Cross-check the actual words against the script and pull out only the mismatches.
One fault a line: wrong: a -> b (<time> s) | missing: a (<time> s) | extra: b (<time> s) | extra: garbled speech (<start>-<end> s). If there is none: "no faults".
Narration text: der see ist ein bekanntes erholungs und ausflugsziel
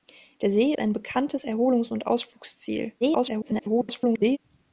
missing: ist (0.7 s)
extra: garbled speech (3.0-4.4 s)